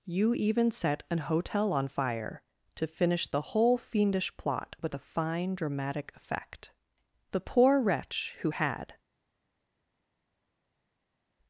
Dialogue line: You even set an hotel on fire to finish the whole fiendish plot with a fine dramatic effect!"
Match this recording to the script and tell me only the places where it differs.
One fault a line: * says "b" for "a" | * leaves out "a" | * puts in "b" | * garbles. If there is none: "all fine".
* puts in "The poor wretch who had"